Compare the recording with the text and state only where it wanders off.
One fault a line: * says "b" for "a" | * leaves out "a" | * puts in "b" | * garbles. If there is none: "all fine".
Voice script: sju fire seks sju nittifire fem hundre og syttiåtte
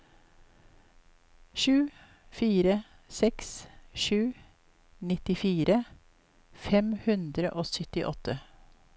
all fine